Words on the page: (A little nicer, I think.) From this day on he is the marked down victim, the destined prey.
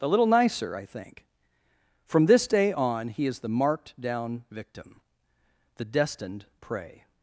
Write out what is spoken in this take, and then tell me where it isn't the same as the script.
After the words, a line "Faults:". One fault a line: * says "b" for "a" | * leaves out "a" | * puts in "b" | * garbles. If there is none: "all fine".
(A little nicer, I think.) From this day on he is the marked down victim, the destined prey.
Faults:
all fine